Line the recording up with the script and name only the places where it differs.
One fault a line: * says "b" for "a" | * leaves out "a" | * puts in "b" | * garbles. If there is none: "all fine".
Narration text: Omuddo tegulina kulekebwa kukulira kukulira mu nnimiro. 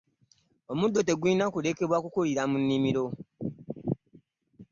* leaves out "kukulira"